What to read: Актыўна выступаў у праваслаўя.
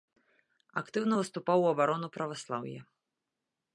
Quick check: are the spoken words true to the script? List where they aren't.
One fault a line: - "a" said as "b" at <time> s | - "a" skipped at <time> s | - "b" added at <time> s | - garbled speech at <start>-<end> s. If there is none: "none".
- "абарону" added at 1.7 s